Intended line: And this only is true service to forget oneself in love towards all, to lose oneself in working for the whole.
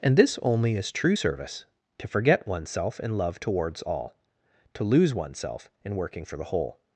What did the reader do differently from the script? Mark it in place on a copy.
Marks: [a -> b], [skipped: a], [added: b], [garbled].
And this only is true service to forget oneself in love towards all, to lose oneself in working for the whole.